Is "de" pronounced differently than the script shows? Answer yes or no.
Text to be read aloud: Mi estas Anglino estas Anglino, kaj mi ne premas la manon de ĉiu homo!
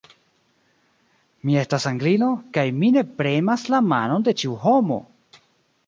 no